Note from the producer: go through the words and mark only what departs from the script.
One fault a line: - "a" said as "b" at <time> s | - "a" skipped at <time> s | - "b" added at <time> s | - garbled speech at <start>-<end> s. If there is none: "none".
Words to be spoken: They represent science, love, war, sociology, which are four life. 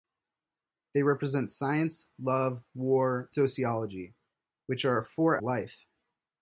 none